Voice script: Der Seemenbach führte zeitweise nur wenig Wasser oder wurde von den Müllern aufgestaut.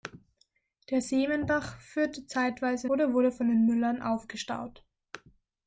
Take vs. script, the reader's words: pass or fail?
fail